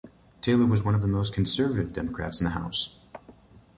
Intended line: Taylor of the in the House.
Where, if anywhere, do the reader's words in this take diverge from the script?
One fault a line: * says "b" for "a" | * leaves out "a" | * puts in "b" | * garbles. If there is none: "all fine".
* puts in "was one"
* puts in "most conservative Democrats"